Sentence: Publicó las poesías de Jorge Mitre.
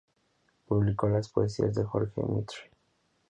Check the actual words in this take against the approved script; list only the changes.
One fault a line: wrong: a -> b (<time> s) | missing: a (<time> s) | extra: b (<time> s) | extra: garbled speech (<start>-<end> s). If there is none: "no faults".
no faults